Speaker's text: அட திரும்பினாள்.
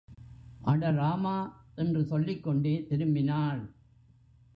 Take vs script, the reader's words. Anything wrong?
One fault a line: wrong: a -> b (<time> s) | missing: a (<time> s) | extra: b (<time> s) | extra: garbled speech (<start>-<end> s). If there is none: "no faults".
extra: ராமா என்று சொல்லிக்கொண்டே (0.9 s)